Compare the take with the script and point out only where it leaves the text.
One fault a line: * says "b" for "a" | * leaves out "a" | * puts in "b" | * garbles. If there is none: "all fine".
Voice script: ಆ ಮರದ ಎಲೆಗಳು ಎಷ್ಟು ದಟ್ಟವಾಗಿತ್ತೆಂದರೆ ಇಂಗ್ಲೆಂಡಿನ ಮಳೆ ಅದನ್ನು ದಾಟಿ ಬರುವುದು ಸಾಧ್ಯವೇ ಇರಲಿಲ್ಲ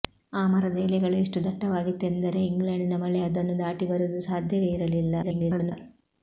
* garbles